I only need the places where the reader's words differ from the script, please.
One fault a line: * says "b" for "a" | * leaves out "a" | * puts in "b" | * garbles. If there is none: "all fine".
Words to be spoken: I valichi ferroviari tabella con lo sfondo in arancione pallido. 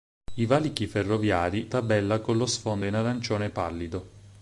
all fine